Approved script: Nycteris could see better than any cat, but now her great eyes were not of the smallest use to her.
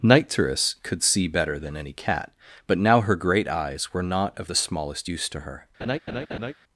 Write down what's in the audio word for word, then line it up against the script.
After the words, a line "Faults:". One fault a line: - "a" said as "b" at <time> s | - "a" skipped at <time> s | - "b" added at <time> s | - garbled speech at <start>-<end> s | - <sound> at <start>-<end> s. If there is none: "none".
Nycteris could see better than any cat, but now her great eyes were not of the smallest use to her.
Faults:
- laugh at 5.8-6.5 s